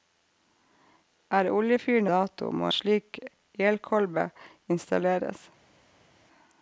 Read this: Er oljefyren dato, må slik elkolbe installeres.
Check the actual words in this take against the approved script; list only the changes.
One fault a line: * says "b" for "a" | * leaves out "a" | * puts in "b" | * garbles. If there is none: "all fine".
all fine